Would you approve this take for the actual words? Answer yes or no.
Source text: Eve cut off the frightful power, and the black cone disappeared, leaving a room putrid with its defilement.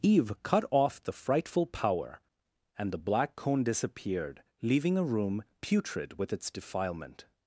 yes